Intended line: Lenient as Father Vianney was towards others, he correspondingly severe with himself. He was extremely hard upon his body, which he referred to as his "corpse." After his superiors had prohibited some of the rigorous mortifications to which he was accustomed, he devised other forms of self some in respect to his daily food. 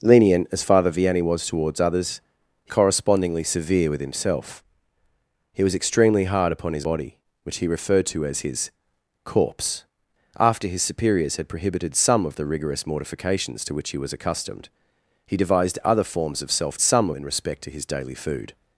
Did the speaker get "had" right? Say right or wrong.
right